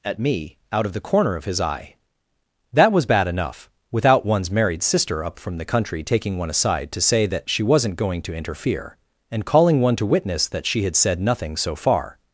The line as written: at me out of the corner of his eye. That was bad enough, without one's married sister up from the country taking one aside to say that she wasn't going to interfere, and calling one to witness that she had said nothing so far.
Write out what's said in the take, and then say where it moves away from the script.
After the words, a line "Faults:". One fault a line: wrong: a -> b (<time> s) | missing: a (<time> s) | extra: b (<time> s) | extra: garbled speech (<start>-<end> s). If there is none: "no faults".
at me out of the corner of his eye. That was bad enough, without one's married sister up from the country taking one aside to say that she wasn't going to interfere, and calling one to witness that she had said nothing so far.
Faults:
no faults